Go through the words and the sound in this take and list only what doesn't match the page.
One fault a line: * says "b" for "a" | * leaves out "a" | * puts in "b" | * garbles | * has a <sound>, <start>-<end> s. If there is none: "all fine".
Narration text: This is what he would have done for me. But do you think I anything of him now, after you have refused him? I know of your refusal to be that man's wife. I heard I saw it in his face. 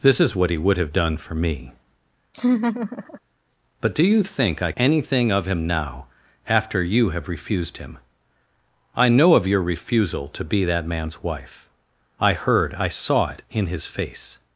* has a laugh, 2.3-3.2 s